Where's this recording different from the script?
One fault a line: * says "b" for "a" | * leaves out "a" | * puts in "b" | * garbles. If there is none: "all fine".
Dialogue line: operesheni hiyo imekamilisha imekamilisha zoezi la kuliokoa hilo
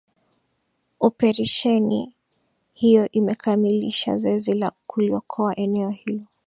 * leaves out "imekamilisha"
* puts in "eneo"